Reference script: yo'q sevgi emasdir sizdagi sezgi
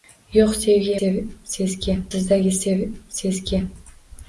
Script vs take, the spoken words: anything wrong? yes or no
yes